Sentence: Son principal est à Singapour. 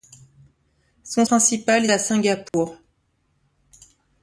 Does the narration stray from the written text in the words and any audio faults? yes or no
yes